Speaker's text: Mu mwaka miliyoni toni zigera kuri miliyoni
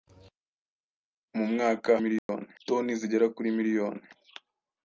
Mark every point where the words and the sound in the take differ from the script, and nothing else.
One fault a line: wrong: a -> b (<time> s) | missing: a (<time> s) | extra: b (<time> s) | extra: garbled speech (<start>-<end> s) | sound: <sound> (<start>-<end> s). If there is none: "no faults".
sound: dropout (2.2-2.3 s)